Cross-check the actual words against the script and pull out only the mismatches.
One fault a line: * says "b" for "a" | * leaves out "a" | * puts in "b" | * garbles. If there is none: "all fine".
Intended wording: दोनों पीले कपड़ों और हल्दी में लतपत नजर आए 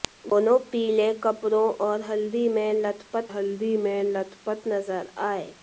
* puts in "हल्दी में लतपत"